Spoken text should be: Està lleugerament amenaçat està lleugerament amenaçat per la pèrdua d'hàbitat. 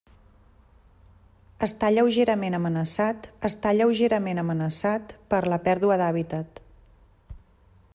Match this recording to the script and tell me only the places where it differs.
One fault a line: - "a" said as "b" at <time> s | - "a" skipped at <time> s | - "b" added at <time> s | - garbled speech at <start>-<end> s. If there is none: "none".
none